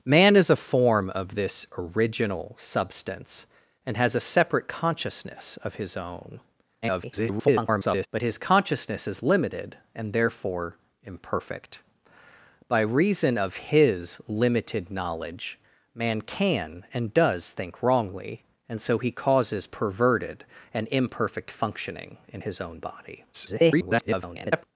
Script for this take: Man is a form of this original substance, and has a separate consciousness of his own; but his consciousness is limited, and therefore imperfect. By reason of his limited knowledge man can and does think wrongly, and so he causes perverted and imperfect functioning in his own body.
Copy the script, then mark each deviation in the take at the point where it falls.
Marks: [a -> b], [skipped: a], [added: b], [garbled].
Man is a form of this original substance, and has a separate consciousness of his own; [garbled] but his consciousness is limited, and therefore imperfect. By reason of his limited knowledge man can and does think wrongly, and so he causes perverted and imperfect functioning in his own body. [garbled]